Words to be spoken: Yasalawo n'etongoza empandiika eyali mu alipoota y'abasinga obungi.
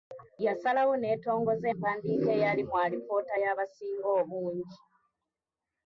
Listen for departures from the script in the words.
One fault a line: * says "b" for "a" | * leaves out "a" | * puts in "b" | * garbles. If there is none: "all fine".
all fine